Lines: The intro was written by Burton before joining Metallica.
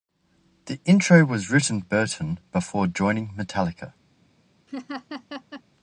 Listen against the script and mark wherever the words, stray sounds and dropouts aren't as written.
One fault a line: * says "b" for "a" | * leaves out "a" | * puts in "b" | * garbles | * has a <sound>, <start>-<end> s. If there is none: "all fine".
* leaves out "by"
* has a laugh, 4.7-5.6 s